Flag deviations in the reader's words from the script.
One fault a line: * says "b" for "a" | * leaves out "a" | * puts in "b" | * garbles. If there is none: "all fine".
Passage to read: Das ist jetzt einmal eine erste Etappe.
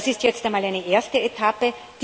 all fine